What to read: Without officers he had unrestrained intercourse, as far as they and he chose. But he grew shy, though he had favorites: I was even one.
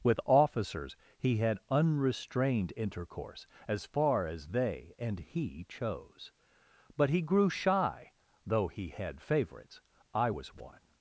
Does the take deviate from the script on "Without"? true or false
true